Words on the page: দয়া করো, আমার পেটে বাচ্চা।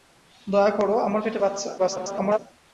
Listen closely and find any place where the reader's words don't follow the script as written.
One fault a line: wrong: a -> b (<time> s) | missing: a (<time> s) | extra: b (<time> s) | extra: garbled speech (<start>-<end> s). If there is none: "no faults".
extra: garbled speech (1.8-2.4 s)